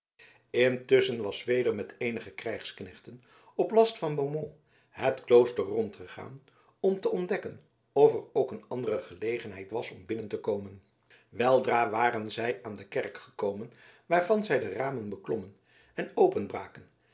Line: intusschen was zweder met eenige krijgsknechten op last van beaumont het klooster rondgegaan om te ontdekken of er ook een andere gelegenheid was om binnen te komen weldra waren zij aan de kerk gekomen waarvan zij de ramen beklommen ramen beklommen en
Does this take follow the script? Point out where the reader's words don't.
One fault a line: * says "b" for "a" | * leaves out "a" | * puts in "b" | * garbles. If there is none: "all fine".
* leaves out "ramen beklommen"